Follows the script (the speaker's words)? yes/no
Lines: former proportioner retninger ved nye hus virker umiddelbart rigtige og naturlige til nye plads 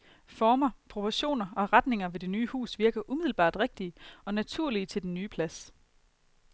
no